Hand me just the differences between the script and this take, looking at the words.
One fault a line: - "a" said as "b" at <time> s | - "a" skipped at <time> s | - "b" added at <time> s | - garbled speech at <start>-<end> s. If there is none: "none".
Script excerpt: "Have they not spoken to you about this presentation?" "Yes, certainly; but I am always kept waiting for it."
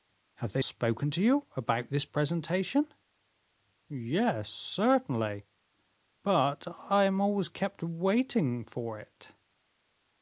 - "not" skipped at 0.6 s